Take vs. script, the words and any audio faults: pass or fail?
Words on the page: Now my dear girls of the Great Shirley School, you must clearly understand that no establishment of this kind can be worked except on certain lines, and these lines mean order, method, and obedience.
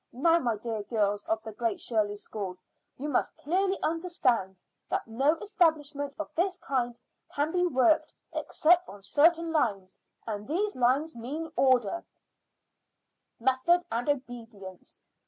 pass